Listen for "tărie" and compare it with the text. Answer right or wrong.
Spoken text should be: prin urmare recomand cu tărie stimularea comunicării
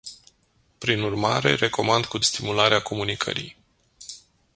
wrong